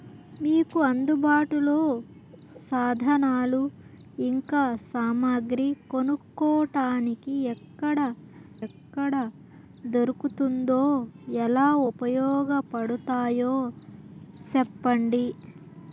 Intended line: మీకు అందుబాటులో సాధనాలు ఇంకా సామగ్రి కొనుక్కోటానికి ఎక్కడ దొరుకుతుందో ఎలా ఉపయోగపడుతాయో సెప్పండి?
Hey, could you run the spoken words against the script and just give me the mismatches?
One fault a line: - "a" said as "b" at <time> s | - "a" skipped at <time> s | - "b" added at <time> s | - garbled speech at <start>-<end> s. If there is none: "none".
- "ఎక్కడ" added at 8.7 s